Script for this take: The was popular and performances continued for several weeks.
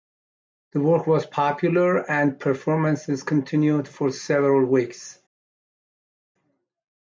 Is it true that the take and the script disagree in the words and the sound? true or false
true